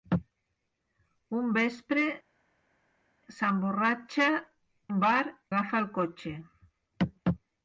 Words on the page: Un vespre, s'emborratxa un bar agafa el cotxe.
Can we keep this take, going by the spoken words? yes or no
yes